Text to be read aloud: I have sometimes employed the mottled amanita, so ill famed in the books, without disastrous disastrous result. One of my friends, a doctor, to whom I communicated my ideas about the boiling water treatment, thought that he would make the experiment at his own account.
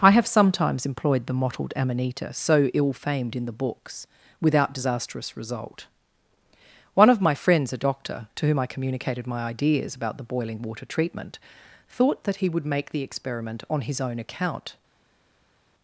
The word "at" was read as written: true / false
false